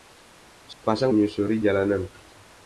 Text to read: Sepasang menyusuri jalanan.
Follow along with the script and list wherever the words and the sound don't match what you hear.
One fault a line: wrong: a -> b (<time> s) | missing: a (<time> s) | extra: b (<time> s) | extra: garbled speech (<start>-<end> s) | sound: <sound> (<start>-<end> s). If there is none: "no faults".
sound: dropout (0.7-0.8 s)